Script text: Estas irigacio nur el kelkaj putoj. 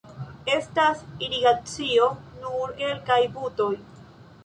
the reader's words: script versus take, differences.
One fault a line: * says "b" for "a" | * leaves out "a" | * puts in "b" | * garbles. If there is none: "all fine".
* leaves out "el"